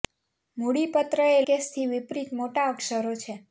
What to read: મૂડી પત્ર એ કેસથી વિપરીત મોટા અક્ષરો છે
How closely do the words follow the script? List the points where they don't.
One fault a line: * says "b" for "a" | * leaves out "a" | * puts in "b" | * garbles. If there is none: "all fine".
all fine